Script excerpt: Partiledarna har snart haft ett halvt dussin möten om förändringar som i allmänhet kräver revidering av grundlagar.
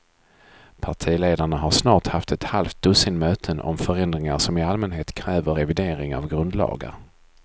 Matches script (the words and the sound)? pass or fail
pass